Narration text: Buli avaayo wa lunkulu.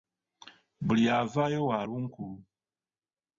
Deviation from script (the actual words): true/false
false